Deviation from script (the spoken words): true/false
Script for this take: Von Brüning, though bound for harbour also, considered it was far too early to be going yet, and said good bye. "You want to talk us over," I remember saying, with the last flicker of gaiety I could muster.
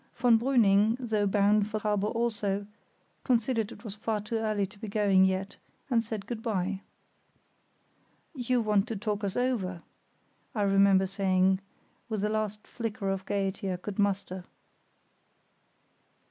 false